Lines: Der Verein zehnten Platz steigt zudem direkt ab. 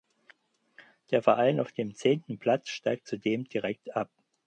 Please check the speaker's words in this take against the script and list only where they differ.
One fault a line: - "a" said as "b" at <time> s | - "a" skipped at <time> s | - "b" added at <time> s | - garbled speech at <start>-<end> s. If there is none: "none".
- "auf dem" added at 1.6 s